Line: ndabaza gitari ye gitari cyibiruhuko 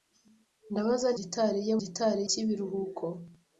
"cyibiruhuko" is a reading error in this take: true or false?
false